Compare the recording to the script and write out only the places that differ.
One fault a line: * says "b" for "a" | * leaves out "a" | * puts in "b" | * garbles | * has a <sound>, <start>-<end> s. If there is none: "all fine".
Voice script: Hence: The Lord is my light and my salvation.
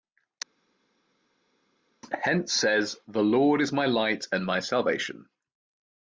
* puts in "says"